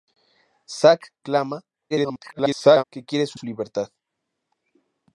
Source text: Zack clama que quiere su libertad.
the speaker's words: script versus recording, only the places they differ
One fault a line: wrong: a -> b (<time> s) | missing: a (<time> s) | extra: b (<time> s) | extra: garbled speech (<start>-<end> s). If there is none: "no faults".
extra: garbled speech (1.9-2.8 s)
extra: su (3.3 s)